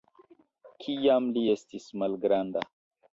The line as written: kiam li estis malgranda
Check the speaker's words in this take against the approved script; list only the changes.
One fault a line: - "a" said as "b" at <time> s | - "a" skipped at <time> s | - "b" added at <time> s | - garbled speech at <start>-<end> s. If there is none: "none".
none